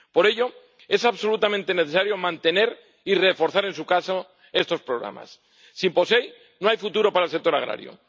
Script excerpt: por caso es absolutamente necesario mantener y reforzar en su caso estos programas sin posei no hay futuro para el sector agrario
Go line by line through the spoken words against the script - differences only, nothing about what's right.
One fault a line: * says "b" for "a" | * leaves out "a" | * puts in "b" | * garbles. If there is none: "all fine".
* says "ello" for "caso"